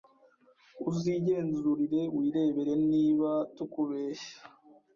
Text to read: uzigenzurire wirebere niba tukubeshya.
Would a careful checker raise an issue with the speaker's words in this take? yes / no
no